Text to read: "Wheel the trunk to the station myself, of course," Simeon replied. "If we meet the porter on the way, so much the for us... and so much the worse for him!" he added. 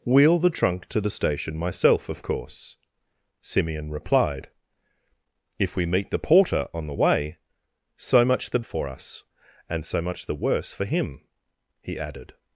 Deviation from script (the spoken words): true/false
false